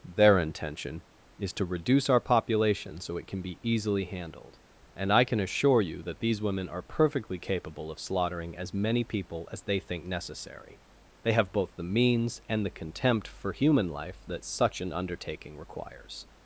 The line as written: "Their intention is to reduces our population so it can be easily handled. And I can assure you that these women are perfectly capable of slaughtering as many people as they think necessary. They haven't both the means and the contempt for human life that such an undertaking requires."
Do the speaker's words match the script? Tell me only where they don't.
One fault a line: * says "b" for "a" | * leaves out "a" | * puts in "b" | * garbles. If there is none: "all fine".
* says "reduce" for "reduces"
* says "have" for "haven't"